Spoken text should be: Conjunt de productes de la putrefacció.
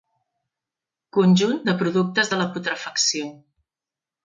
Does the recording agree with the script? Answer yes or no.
yes